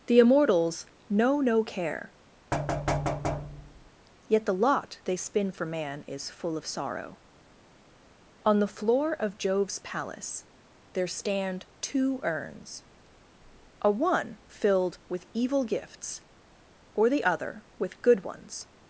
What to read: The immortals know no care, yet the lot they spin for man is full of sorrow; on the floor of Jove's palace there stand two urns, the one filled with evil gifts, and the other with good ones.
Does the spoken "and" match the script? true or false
false